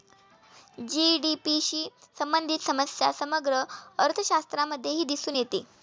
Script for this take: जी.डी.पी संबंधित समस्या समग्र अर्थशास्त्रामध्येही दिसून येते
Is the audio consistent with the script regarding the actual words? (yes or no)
no